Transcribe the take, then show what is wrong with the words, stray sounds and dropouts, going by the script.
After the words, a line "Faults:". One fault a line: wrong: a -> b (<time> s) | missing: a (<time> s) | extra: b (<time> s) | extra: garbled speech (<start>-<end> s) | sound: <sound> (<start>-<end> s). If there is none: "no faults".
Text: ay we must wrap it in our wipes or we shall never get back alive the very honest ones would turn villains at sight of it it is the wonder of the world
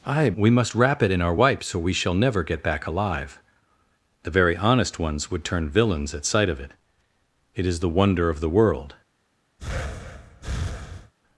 ay we must wrap it in our wipes or we shall never get back alive the very honest ones would turn villains at sight of it it is the wonder of the world
Faults:
sound: breath (9.6-11.1 s)